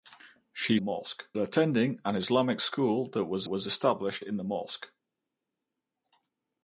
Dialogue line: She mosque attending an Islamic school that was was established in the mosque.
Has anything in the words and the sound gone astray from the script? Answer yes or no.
no